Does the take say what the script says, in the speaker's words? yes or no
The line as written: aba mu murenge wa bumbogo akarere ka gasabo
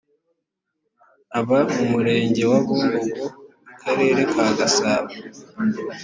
yes